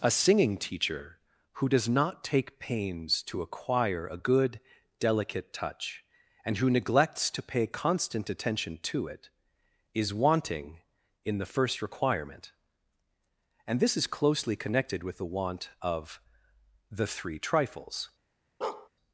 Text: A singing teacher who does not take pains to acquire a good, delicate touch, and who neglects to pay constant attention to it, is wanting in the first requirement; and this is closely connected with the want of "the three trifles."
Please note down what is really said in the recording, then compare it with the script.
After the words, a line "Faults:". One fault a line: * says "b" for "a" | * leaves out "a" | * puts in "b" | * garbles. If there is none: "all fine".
A singing teacher who does not take pains to acquire a good, delicate touch, and who neglects to pay constant attention to it, is wanting in the first requirement; and this is closely connected with the want of "the three trifles."
Faults:
all fine